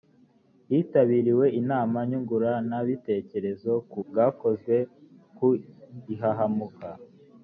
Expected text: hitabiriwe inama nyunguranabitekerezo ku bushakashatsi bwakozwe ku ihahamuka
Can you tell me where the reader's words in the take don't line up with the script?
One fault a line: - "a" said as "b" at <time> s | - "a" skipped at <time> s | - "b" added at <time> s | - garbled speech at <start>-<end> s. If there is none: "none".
- "bushakashatsi" skipped at 4.0 s